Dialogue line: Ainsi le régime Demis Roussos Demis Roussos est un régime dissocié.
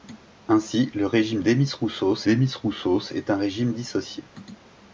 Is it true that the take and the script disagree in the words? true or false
false